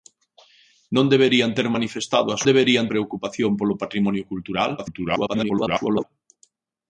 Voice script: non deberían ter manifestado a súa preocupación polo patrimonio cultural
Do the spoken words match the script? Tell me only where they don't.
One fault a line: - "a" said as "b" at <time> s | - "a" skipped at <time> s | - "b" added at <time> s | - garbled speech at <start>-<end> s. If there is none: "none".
- "súa" said as "deberían" at 2.5 s
- garbled speech at 4.8-6.0 s